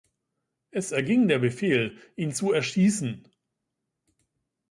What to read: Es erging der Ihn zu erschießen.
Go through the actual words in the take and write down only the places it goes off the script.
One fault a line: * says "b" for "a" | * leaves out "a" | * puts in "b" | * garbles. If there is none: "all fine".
* puts in "Befehl"